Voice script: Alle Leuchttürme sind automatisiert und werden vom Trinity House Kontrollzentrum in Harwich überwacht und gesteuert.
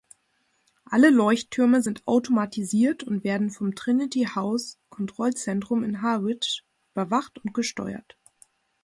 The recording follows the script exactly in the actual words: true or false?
true